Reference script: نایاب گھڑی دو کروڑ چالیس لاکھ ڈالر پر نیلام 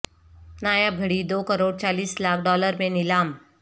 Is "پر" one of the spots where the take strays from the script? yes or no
yes